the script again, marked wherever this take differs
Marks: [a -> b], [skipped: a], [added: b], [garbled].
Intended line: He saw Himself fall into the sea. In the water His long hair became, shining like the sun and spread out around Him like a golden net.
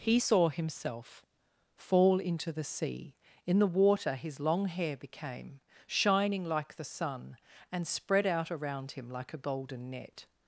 He saw Himself fall into the sea. In the water His long hair became, shining like the sun and spread out around Him like a golden net.